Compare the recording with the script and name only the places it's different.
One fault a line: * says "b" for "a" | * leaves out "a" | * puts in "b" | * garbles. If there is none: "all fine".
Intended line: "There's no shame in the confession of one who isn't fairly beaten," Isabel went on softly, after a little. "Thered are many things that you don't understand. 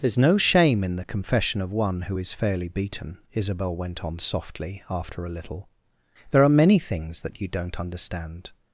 * says "is" for "isn't"
* says "There" for "Thered"